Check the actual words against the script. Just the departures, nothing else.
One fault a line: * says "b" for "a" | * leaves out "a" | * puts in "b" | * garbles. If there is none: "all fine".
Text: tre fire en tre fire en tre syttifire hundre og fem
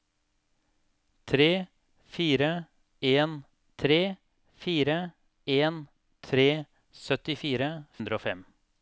all fine